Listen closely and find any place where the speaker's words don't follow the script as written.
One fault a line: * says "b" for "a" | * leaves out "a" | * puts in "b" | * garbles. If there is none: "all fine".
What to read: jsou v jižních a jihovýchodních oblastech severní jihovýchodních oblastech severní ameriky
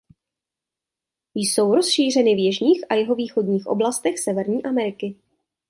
* puts in "rozšířeny"
* leaves out "jihovýchodních oblastech severní"